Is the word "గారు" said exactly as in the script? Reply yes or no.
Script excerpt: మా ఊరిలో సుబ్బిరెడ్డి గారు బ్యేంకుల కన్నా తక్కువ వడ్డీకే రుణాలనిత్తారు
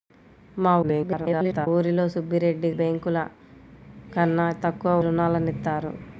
no